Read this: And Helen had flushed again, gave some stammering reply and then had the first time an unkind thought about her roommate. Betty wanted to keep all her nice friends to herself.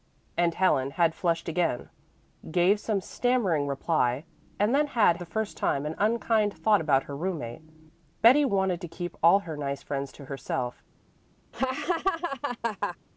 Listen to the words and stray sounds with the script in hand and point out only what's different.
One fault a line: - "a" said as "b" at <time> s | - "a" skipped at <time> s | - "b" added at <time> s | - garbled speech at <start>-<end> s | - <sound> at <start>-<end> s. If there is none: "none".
- laugh at 11.5-13.0 s